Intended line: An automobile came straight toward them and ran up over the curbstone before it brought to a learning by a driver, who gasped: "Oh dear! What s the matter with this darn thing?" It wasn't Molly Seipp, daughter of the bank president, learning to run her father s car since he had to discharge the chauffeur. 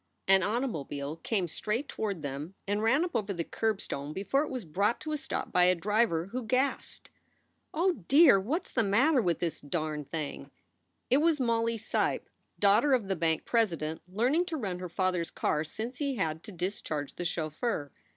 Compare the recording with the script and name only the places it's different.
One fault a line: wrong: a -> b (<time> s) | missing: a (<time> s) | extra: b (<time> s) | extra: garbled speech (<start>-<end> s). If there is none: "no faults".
extra: was (4.5 s)
wrong: learning -> stop (5.2 s)
wrong: wasn't -> was (11.2 s)